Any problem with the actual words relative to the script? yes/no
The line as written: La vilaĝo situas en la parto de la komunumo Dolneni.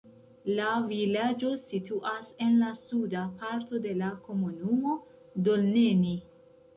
yes